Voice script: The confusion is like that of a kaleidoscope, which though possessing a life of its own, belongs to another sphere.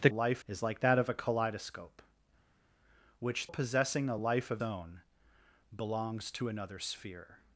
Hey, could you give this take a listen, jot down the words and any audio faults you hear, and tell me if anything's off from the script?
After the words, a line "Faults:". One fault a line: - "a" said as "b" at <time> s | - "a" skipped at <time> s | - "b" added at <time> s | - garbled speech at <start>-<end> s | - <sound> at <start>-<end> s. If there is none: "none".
The life is like that of a kaleidoscope, which possessing a life of own, belongs to another sphere.
Faults:
- "confusion" said as "life" at 0.1 s
- "though" skipped at 3.5 s
- "its" skipped at 4.6 s